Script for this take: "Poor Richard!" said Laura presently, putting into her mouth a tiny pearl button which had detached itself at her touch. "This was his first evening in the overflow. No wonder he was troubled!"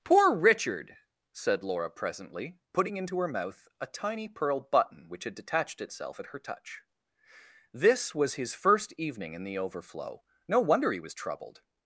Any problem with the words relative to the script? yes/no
no